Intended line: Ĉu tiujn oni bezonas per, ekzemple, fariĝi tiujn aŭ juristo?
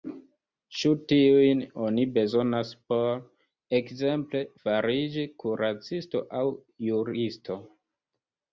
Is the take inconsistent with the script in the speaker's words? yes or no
yes